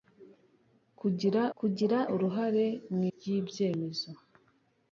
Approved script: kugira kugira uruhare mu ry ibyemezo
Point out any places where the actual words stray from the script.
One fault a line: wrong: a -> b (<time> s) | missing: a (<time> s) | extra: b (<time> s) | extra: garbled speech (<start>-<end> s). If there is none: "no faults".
no faults